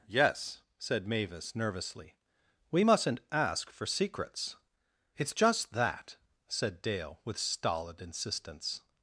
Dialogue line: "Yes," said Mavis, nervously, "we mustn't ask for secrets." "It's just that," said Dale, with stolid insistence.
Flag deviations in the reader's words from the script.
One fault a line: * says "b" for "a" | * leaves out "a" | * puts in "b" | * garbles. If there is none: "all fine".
all fine